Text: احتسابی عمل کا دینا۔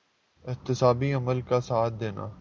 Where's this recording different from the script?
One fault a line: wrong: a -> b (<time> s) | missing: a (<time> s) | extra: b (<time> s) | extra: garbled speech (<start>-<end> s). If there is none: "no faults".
extra: ساتھ (1.6 s)